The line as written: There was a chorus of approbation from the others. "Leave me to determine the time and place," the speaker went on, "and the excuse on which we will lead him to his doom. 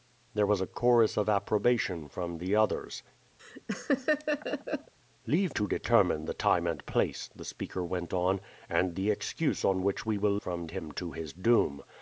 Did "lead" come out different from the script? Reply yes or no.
yes